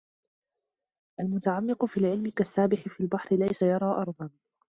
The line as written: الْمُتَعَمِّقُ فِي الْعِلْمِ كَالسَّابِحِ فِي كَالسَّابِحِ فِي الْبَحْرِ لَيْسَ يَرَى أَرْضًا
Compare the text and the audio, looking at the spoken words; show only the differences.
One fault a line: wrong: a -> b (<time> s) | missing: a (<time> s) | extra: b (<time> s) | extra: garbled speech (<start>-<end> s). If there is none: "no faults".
missing: كَالسَّابِحِ فِي (3.0 s)